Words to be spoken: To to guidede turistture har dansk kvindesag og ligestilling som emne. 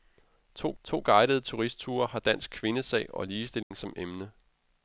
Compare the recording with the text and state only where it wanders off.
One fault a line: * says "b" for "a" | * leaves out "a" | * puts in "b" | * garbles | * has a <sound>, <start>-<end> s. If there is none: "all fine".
* has a dropout, 3.6-3.7 s